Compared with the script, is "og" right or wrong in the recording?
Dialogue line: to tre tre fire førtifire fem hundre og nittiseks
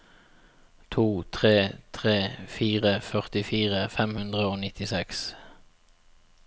right